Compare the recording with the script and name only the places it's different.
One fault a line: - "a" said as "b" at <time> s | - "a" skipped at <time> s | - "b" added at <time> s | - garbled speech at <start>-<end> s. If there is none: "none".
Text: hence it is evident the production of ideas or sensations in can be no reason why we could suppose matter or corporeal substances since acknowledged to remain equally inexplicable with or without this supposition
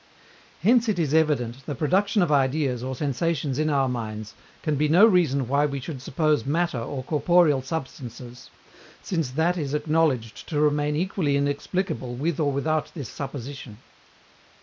- "our minds" added at 3.7 s
- "could" said as "should" at 5.8 s
- "that is" added at 9.3 s